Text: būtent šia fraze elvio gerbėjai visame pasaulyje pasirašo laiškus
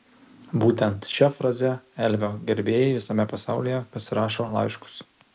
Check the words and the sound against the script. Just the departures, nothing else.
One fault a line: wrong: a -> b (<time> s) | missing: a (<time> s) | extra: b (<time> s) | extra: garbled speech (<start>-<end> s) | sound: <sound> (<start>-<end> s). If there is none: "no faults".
no faults